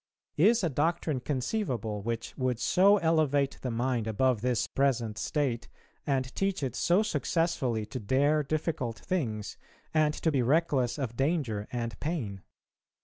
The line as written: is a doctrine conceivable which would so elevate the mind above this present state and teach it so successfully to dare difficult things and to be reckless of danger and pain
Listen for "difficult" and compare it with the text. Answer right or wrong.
right